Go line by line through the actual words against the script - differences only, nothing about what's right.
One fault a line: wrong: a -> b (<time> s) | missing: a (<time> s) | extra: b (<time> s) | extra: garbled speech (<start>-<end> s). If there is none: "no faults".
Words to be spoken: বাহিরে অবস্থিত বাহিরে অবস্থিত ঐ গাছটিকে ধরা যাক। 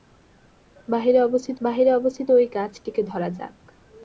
no faults